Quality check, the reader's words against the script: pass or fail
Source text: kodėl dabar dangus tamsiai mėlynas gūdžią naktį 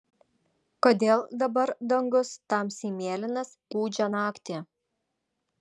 pass